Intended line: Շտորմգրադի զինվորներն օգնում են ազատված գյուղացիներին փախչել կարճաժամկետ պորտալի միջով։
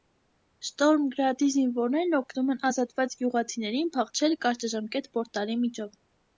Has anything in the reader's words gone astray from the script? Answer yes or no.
no